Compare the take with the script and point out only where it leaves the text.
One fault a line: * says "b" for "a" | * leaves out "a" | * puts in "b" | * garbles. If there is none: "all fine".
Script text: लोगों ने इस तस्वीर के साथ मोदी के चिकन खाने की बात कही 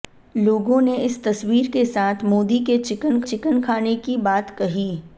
* puts in "चिकन"